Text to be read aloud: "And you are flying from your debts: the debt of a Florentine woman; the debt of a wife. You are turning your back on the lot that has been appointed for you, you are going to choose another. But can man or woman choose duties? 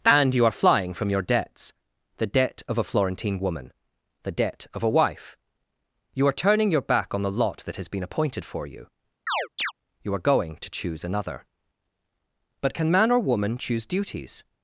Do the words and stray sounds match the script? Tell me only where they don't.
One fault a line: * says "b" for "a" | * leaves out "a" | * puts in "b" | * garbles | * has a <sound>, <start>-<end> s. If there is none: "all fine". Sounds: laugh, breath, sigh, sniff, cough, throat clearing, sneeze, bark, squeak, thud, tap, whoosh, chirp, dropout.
* has a chirp, 9.3-9.7 s